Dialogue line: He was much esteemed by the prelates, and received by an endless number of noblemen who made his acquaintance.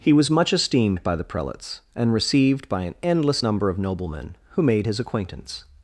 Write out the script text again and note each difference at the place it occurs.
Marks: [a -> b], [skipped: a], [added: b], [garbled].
He was much esteemed by the prelates, and received by an endless number of noblemen who made his acquaintance.